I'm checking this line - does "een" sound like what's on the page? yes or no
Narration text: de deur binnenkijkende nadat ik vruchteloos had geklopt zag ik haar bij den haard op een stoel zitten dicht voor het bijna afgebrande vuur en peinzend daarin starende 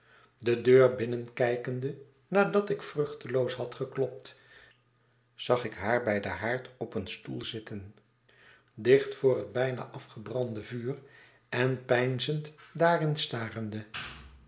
yes